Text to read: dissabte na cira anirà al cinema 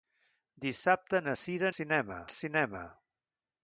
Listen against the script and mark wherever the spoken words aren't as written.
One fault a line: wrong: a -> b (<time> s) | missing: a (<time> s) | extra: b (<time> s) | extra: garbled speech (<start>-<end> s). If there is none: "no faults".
wrong: anirà -> cinema (1.7 s)